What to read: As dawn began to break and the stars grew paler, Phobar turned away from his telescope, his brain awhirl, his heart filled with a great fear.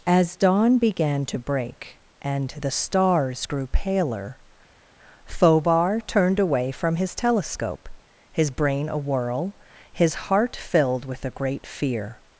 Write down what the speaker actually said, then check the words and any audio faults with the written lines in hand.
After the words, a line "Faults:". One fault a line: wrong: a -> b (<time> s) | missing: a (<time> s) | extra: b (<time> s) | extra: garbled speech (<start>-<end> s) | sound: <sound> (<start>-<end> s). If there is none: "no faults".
As dawn began to break and the stars grew paler, Phobar turned away from his telescope, his brain awhirl, his heart filled with a great fear.
Faults:
no faults